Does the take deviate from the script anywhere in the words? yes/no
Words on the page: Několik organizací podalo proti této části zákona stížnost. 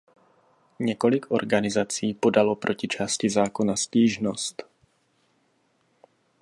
yes